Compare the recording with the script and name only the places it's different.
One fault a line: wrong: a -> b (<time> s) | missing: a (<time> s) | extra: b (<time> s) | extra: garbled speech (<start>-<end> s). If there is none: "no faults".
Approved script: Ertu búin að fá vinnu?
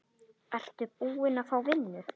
no faults